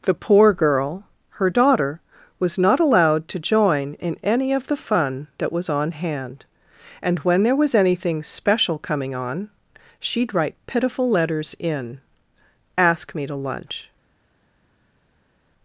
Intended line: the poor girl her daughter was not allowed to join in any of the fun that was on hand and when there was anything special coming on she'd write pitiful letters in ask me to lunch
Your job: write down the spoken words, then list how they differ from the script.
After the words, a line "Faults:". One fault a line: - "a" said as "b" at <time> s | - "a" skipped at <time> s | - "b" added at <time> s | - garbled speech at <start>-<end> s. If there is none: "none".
the poor girl her daughter was not allowed to join in any of the fun that was on hand and when there was anything special coming on she'd write pitiful letters in ask me to lunch
Faults:
none